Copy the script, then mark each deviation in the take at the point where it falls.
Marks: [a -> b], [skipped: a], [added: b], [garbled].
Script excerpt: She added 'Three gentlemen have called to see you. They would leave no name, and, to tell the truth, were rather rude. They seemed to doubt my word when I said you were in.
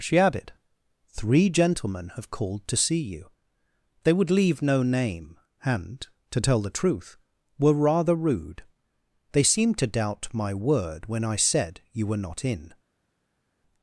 She added 'Three gentlemen have called to see you. They would leave no name, and, to tell the truth, were rather rude. They seemed to doubt my word when I said you were [added: not] in.